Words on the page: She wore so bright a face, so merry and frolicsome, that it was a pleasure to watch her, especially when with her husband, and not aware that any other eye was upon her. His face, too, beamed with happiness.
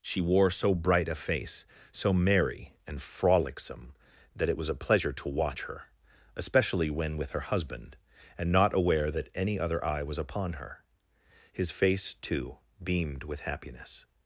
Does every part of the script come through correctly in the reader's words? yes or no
yes